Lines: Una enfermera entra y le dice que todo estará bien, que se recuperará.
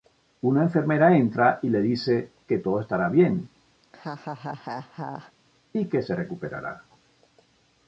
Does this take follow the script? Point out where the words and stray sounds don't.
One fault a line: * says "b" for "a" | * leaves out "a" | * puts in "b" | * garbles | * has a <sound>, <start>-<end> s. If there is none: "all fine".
* has a laugh, 3.8-5.3 s
* puts in "y"